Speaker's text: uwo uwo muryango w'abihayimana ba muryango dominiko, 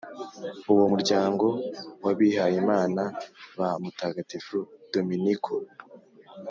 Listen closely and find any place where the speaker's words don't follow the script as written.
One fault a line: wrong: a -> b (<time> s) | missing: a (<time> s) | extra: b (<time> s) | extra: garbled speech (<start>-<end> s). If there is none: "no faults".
missing: uwo (0.8 s)
wrong: muryango -> mutagatifu (3.8 s)